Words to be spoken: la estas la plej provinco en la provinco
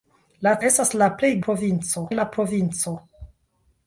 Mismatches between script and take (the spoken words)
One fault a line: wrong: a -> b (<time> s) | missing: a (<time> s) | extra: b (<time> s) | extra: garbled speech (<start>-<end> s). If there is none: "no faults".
no faults